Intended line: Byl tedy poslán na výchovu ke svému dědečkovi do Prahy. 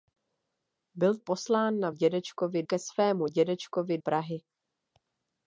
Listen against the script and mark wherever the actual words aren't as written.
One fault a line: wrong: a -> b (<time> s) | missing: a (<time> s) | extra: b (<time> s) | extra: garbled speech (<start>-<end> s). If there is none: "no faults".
missing: tedy (1.2 s)
wrong: výchovu -> dědečkovi (1.9 s)
missing: do (4.0 s)